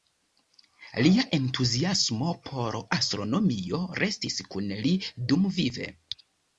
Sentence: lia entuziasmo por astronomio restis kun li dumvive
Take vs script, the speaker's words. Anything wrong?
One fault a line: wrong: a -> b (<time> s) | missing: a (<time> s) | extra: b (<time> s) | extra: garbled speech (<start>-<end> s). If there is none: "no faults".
no faults